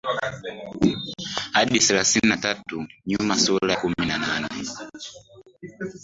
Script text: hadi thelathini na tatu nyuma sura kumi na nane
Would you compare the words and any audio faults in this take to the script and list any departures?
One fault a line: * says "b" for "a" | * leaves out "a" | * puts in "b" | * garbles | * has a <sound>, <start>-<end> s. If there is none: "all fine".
all fine